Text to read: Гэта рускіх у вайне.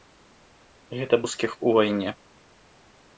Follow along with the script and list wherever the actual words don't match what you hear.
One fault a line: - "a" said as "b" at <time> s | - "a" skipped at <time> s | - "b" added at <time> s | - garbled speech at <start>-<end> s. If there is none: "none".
none